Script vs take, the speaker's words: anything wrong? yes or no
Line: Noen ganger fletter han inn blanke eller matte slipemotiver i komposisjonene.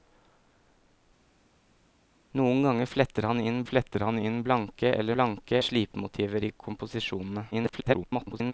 yes